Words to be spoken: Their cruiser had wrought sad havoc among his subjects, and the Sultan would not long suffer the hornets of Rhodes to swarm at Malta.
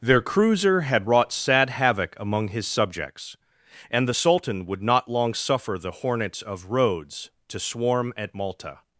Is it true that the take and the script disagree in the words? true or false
false